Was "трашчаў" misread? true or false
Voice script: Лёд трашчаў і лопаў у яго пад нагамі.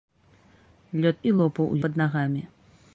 true